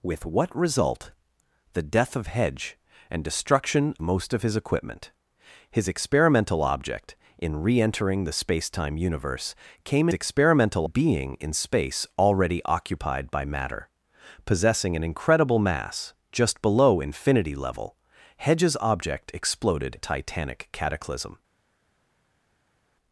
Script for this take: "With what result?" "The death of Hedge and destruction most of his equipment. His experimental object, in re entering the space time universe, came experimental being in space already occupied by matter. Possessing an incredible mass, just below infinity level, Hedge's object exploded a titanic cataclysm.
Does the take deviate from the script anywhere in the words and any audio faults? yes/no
no